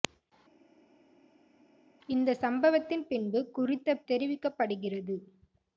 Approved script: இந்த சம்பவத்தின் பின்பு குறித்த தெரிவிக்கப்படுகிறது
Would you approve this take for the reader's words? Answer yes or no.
yes